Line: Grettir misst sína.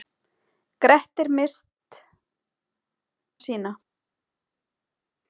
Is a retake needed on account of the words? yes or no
no